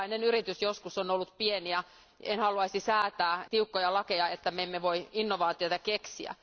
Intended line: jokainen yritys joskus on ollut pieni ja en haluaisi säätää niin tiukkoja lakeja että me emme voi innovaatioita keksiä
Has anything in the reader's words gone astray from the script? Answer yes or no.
yes